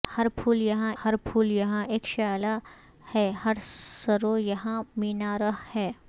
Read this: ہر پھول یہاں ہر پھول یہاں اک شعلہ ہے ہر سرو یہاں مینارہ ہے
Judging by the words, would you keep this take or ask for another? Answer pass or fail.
pass